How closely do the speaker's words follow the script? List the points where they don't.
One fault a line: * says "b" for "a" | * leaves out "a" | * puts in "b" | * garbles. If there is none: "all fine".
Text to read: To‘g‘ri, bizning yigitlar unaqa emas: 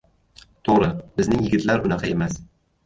all fine